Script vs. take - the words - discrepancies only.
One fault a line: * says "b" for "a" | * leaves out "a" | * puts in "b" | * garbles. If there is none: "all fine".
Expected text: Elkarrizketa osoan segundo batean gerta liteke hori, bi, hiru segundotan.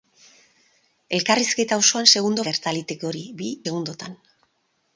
* leaves out "batean"
* leaves out "hiru"